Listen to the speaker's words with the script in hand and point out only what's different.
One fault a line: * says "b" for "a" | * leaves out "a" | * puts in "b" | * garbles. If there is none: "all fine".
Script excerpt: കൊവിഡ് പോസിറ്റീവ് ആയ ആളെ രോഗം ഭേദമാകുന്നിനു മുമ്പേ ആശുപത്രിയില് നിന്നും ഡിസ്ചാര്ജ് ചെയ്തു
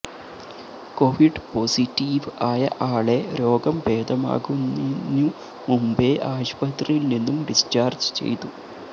all fine